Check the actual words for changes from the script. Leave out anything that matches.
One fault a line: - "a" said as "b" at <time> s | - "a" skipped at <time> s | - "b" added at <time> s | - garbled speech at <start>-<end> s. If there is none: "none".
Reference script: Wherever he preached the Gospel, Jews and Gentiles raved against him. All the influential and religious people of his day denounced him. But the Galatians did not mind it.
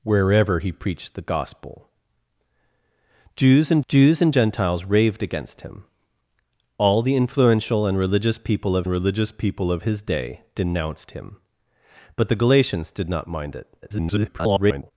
- "Jews and" added at 3.9 s
- "religious people of" added at 8.9 s
- garbled speech at 13.8-14.9 s